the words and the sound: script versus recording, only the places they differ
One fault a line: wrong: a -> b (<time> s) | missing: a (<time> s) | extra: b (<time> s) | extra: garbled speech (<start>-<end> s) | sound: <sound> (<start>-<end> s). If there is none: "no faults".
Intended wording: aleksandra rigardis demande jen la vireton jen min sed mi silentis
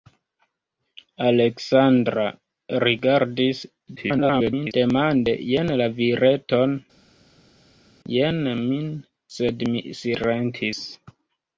extra: garbled speech (4.0-4.7 s)